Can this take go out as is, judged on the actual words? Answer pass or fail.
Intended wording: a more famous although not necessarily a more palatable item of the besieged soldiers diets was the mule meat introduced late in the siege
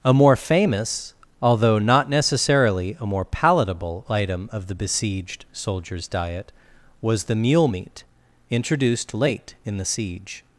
fail